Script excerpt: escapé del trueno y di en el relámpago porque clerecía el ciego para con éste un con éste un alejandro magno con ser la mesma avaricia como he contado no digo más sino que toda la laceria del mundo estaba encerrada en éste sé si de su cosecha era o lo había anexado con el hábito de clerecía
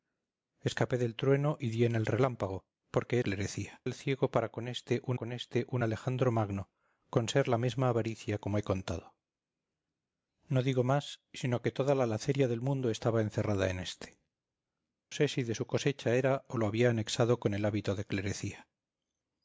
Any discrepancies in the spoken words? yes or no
no